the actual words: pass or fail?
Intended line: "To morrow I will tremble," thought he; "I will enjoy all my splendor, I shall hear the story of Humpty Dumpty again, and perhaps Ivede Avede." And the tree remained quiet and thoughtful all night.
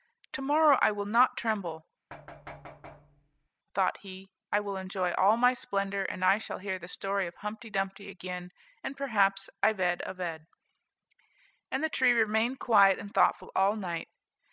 fail